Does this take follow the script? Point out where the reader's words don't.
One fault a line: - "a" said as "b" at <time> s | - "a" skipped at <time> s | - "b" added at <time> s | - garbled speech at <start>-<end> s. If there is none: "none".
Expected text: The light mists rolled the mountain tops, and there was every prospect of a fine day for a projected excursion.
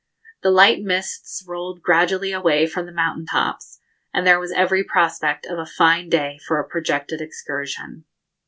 - "gradually away from" added at 1.8 s